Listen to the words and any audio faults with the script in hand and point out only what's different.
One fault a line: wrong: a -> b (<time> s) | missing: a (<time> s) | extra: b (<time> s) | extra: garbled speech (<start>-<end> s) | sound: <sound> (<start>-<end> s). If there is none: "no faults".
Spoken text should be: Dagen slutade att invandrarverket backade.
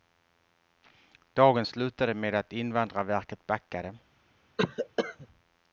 extra: med (2.1 s)
sound: cough (4.6-5.3 s)